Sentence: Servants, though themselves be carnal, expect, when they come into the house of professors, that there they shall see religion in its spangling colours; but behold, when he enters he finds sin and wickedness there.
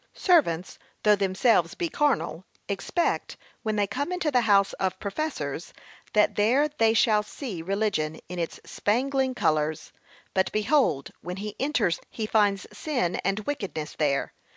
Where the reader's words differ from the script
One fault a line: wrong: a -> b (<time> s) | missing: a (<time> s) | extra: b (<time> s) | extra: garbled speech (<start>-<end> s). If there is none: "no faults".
no faults